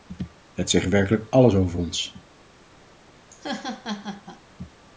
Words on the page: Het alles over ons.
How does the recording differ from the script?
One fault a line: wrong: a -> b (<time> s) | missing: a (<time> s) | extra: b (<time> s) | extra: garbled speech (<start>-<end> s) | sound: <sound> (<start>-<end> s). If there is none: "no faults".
extra: zegt werkelijk (0.7 s)
sound: laugh (3.3-4.4 s)